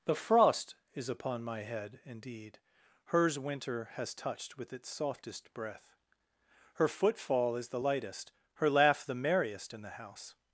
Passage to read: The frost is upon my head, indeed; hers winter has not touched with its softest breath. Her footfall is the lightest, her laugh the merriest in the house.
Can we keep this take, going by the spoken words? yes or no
no